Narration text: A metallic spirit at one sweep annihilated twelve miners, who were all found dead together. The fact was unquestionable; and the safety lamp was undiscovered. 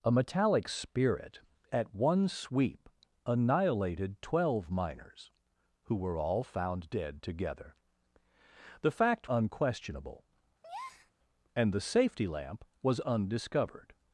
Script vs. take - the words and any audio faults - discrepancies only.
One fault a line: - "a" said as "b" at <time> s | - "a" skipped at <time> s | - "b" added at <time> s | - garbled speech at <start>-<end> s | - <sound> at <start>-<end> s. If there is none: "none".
- "was" skipped at 9.3 s
- breath at 10.6-11.1 s